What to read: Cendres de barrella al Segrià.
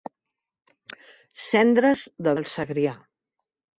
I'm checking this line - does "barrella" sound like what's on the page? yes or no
no